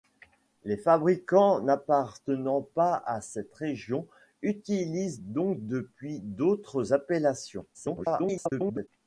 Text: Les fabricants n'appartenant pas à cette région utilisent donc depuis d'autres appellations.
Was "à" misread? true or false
false